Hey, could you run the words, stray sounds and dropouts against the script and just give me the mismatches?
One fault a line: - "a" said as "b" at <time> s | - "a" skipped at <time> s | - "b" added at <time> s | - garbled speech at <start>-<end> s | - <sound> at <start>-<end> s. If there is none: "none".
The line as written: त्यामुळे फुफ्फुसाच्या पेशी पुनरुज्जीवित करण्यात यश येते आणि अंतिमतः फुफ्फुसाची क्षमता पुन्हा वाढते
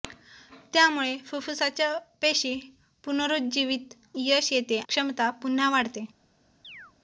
- "करण्यात" skipped at 3.9 s
- "आणि अंतिमतः फुफ्फुसाची" skipped at 4.8 s
- chirp at 6.6-6.9 s